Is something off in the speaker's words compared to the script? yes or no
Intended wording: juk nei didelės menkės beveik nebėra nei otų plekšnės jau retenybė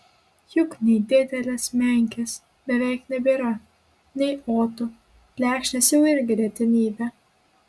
yes